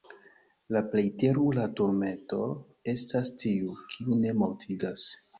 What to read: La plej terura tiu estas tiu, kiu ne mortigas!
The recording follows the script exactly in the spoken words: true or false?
false